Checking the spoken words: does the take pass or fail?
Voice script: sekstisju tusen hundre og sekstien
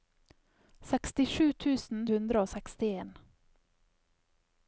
pass